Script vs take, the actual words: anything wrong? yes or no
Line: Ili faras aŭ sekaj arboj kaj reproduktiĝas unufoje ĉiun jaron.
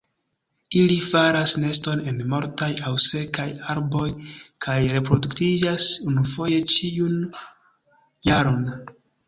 yes